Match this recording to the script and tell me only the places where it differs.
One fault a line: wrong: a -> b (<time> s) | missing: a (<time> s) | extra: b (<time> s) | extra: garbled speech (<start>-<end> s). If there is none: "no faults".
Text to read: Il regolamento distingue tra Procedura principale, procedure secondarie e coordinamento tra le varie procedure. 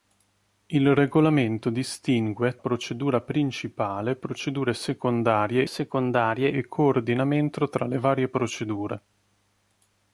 missing: tra (2.6 s)
extra: secondarie (5.7 s)